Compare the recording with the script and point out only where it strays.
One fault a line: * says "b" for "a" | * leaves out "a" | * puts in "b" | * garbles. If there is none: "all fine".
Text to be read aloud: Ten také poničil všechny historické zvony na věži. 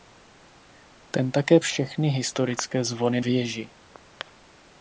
* leaves out "poničil"
* leaves out "na"